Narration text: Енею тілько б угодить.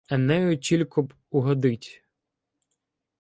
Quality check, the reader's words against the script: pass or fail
pass